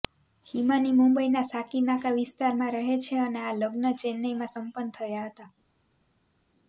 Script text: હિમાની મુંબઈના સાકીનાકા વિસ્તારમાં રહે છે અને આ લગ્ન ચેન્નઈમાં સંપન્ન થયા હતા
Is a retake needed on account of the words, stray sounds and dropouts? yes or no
no